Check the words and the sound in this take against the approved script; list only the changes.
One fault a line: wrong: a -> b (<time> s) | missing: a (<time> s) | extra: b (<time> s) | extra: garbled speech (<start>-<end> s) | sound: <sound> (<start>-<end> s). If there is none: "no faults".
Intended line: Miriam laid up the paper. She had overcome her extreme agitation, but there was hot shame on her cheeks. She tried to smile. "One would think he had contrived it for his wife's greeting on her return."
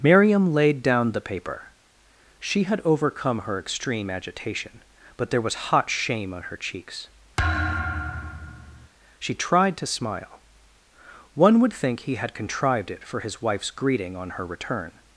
wrong: up -> down (0.8 s)
sound: thud (7.4-8.9 s)